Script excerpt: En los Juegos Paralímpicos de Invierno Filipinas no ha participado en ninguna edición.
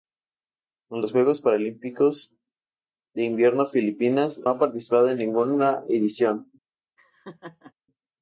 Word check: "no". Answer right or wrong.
wrong